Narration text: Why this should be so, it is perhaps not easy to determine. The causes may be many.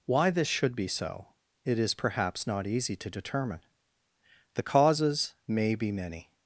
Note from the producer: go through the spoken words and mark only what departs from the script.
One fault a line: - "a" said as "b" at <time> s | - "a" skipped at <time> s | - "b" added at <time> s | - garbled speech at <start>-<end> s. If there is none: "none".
none